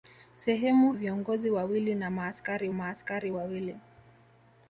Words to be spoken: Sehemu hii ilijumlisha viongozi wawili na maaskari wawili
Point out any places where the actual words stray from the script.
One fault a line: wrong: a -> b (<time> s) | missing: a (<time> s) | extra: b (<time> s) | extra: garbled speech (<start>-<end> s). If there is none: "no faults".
missing: hii ilijumlisha (0.9 s)
extra: maaskari (2.7 s)